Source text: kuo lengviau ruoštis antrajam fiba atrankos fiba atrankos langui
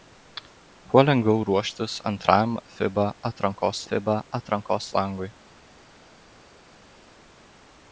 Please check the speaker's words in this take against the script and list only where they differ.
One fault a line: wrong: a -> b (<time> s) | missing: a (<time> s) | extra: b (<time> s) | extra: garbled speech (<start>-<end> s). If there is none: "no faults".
no faults